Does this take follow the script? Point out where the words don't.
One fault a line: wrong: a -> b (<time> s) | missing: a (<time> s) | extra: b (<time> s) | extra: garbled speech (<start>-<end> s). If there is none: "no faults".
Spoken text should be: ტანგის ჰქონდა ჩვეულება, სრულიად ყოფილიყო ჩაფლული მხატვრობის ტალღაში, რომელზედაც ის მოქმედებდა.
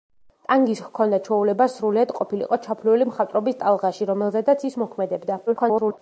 extra: garbled speech (5.5-6.0 s)